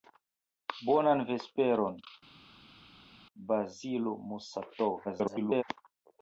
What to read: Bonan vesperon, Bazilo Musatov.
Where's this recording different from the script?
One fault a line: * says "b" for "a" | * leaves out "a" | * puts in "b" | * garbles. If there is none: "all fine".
* garbles